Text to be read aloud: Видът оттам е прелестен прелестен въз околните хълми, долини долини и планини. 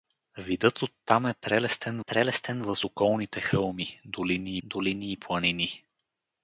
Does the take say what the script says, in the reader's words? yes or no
yes